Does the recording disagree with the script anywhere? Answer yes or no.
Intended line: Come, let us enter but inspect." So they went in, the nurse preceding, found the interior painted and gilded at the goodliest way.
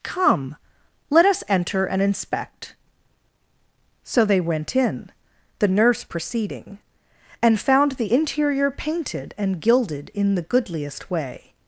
yes